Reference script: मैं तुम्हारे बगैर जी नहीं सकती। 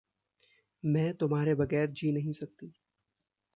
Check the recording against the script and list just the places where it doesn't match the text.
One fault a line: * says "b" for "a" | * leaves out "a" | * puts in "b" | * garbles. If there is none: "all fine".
all fine